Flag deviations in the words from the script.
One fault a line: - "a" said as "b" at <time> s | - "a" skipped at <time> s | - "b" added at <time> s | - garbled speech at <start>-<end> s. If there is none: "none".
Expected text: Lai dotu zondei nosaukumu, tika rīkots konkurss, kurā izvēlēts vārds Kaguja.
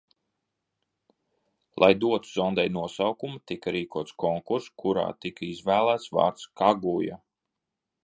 - "tika" added at 5.3 s